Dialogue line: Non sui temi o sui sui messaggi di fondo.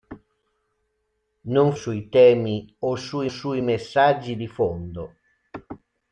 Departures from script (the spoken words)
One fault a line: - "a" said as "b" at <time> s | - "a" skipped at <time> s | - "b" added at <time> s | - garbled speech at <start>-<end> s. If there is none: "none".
none